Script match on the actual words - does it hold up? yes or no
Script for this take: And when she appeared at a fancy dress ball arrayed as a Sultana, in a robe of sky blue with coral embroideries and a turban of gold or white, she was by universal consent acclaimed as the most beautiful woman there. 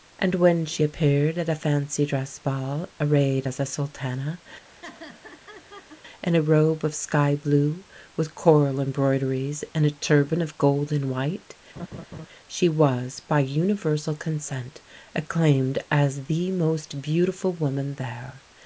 no